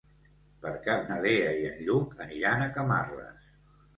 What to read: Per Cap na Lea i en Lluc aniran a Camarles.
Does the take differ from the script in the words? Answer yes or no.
no